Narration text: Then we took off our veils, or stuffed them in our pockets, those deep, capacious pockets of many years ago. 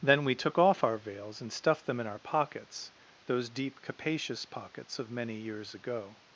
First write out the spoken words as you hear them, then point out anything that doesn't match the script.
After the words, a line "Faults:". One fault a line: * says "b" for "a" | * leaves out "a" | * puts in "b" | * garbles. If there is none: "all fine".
Then we took off our veils, and stuffed them in our pockets, those deep, capacious pockets of many years ago.
Faults:
* says "and" for "or"